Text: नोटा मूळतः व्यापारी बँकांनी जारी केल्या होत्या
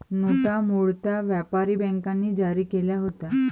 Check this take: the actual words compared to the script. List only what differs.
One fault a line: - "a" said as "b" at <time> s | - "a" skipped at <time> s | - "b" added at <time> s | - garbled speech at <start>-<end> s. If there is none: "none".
none